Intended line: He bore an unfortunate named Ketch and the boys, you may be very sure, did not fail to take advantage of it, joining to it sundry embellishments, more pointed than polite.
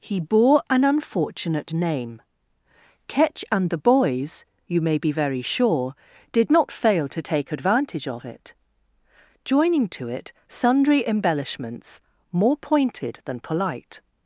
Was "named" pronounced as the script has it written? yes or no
no